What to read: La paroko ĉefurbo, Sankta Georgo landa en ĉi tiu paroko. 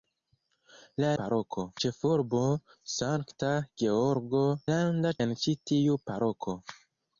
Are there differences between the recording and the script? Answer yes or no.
no